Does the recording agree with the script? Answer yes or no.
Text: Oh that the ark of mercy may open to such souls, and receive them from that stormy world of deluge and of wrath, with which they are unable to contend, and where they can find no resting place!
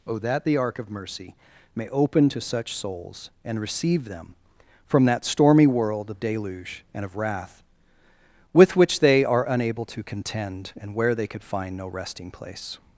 no